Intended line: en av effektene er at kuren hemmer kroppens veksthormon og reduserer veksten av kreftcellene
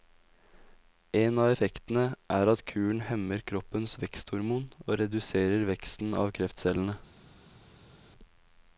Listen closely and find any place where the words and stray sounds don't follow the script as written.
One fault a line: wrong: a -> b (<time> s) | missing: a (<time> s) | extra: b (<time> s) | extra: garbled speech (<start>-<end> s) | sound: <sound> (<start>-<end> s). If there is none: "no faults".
no faults